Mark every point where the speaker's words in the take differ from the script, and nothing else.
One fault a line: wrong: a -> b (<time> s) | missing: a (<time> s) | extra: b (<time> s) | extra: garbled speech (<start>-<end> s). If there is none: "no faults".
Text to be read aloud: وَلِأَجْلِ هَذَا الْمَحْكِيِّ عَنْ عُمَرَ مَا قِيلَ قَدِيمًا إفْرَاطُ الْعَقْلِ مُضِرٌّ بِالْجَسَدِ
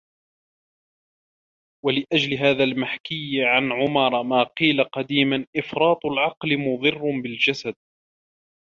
no faults